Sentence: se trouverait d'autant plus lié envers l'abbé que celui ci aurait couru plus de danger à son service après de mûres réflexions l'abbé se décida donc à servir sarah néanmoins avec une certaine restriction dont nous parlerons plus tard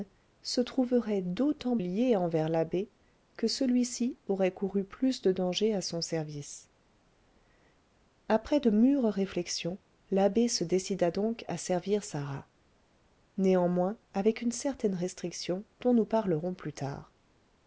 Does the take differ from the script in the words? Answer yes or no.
yes